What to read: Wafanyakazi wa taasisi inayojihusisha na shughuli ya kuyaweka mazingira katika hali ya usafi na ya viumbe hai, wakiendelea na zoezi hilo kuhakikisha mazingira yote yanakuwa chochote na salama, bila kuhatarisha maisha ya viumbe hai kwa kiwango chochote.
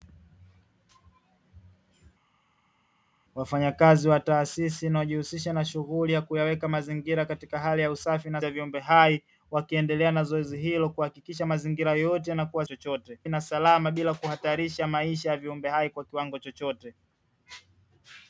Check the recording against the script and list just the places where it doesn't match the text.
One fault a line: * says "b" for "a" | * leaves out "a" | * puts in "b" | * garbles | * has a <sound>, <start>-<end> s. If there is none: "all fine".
all fine